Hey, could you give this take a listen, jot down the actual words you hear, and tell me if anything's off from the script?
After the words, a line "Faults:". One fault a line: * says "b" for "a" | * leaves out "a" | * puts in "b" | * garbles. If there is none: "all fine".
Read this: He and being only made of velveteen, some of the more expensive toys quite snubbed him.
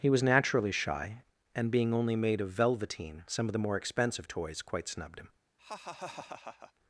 He was naturally shy, and being only made of velveteen, some of the more expensive toys quite snubbed him.
Faults:
* puts in "was naturally shy"